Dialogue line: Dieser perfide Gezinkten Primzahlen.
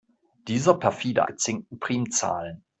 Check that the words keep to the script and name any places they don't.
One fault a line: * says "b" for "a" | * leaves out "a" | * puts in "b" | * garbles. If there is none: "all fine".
all fine